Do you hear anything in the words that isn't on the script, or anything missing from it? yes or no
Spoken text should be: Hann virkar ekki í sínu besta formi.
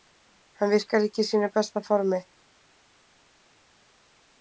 no